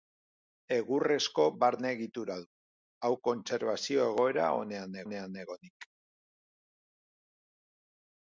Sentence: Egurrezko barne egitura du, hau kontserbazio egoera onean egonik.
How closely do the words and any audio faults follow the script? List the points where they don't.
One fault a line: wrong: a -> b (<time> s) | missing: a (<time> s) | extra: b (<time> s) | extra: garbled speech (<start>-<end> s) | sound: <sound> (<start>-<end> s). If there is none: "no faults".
extra: onean (5.1 s)